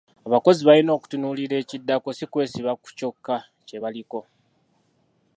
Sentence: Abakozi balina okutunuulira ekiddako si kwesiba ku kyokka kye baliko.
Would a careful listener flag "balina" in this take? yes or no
no